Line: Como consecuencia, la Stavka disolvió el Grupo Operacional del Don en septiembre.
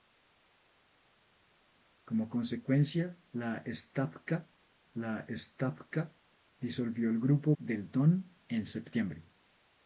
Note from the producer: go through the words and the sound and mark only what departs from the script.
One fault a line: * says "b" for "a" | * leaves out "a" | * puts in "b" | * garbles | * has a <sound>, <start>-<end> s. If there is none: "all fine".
* puts in "la Stavka"
* leaves out "Operacional"